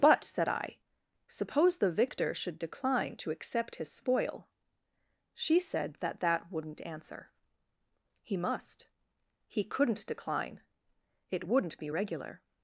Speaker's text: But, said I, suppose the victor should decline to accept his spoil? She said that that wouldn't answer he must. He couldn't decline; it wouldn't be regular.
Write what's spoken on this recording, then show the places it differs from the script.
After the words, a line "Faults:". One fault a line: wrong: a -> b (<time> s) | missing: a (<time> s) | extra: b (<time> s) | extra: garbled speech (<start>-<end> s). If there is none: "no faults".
But, said I, suppose the victor should decline to accept his spoil? She said that that wouldn't answer he must. He couldn't decline; it wouldn't be regular.
Faults:
no faults